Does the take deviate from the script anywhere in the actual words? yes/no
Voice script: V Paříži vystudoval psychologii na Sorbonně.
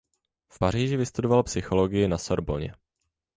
no